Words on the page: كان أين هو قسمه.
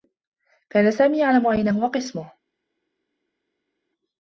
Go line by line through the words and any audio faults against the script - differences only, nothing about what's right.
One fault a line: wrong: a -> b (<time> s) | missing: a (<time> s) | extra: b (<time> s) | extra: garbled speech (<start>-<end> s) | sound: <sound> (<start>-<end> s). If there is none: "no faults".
extra: سامي يعلم (0.9 s)